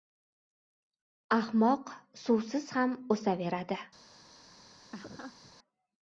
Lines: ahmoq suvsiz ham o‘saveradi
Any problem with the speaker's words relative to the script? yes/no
no